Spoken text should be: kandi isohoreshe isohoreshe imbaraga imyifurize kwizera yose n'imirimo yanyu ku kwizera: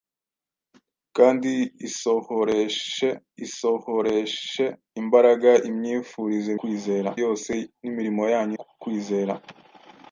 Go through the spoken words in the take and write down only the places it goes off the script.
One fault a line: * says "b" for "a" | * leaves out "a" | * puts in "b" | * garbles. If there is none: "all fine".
all fine